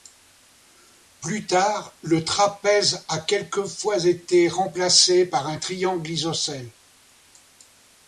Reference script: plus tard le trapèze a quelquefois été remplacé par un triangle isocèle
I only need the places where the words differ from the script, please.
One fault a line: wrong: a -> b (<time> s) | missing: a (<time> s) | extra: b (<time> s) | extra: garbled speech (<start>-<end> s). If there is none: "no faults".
no faults